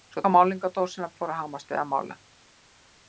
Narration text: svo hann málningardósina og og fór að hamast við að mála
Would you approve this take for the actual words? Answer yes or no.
yes